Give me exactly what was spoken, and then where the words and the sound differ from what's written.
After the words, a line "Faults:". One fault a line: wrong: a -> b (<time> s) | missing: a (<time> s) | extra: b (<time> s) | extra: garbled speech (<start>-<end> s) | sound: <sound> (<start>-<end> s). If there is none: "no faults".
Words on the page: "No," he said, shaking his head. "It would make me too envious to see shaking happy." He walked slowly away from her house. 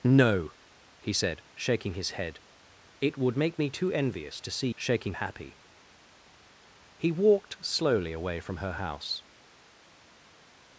"No," he said, shaking his head. "It would make me too envious to see shaking happy." He walked slowly away from her house.
Faults:
no faults